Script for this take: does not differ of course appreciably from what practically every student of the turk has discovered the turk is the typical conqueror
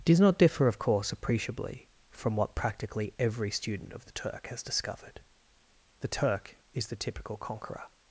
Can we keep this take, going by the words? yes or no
yes